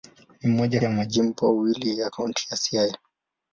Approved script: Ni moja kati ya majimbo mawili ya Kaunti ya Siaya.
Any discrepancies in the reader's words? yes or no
yes